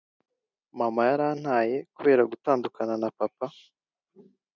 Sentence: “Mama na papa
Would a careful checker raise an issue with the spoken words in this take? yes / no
yes